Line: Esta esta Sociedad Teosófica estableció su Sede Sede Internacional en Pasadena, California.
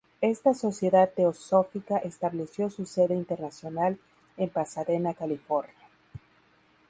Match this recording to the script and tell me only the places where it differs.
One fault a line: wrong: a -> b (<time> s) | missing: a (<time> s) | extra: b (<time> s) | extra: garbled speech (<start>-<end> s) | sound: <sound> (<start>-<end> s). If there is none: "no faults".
missing: esta (0.6 s)
missing: Sede (3.1 s)